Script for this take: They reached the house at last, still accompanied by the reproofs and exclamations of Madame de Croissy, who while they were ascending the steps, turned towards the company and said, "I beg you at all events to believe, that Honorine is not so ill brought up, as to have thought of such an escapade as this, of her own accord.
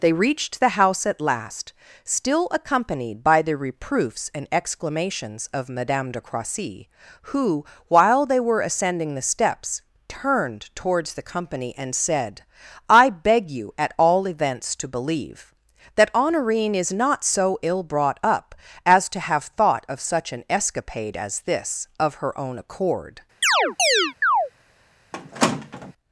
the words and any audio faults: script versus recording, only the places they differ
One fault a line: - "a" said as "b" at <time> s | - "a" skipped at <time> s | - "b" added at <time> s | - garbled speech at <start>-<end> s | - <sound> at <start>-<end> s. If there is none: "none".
- chirp at 23.4-24.5 s
- squeak at 25.1-25.9 s